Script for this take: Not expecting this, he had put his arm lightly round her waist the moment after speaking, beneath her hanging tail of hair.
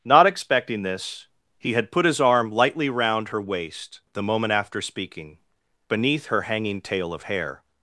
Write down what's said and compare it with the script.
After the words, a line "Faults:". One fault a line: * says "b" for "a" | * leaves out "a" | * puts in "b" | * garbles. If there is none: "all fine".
Not expecting this, he had put his arm lightly round her waist the moment after speaking, beneath her hanging tail of hair.
Faults:
all fine